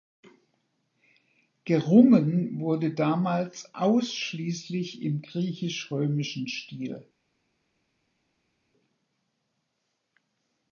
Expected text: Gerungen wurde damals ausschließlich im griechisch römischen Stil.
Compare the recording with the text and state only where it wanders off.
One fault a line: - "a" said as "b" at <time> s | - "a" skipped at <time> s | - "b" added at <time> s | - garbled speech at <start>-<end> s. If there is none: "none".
none